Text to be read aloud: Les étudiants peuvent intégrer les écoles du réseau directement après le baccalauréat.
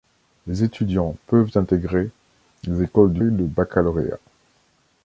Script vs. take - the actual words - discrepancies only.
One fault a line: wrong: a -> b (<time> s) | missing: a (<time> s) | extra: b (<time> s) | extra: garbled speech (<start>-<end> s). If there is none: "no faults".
missing: réseau directement après (3.2 s)